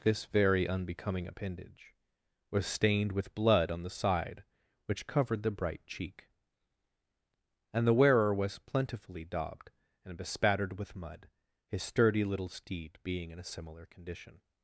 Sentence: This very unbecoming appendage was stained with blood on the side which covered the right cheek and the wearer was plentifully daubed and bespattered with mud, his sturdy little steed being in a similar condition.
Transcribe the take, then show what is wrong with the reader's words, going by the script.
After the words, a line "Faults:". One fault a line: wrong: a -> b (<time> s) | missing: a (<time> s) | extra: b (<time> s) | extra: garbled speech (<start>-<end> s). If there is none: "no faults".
This very unbecoming appendage was stained with blood on the side which covered the bright cheek and the wearer was plentifully daubed and bespattered with mud, his sturdy little steed being in a similar condition.
Faults:
wrong: right -> bright (5.5 s)